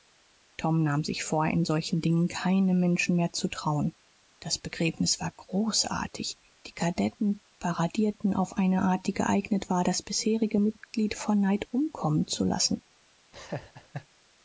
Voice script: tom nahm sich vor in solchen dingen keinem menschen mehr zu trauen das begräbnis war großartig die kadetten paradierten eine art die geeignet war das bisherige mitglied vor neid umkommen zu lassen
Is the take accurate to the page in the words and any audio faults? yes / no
no